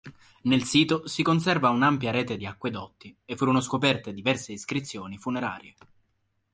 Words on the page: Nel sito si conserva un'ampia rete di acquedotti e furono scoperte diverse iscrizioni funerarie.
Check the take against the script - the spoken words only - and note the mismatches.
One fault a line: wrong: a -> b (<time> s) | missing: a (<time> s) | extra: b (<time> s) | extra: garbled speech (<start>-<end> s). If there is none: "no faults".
no faults